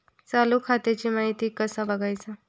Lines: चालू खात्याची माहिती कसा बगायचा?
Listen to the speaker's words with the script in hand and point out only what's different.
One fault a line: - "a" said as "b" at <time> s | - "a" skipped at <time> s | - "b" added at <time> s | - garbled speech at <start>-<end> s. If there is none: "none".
none